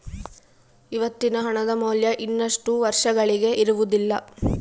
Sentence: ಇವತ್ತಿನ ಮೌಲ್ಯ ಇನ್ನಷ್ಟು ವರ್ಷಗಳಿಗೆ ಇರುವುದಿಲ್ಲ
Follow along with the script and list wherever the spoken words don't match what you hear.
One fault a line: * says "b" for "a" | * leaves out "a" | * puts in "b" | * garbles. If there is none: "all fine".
* puts in "ಹಣದ"